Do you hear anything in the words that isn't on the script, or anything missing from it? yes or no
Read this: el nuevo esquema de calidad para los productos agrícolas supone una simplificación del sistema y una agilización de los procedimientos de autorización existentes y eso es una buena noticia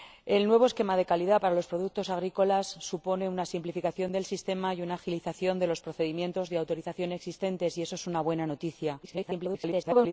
yes